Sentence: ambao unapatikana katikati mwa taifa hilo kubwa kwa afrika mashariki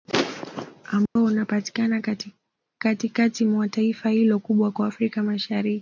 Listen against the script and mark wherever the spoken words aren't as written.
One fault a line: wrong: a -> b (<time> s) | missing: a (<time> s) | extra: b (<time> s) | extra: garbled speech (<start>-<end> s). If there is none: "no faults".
no faults